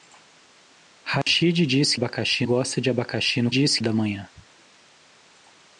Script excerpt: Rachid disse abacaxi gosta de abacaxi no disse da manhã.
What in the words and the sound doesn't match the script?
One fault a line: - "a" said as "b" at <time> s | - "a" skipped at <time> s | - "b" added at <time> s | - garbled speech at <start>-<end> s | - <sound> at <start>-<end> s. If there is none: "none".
- dropout at 1.2-1.3 s